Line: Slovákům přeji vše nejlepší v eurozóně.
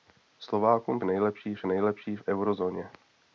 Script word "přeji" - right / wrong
wrong